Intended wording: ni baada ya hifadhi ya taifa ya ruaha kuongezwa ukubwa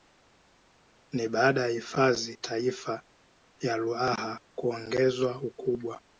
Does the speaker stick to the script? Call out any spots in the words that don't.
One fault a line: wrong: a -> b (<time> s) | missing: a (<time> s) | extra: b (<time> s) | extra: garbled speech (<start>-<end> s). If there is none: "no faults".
missing: ya (2.4 s)